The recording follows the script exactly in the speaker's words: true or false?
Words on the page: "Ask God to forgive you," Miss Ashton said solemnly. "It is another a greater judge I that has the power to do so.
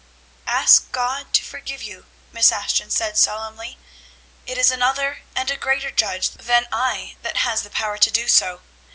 false